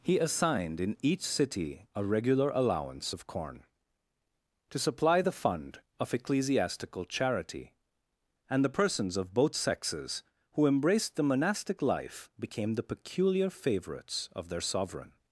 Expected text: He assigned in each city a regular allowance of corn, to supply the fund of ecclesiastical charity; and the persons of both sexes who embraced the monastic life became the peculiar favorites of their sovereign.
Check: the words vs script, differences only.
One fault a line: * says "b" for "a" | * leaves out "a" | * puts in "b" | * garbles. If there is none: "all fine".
all fine